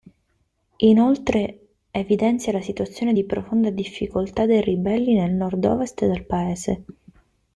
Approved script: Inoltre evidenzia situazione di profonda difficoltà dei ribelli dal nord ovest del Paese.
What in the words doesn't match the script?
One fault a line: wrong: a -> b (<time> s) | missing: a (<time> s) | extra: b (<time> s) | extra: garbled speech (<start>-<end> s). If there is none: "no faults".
extra: la (2.5 s)
wrong: dal -> nel (5.1 s)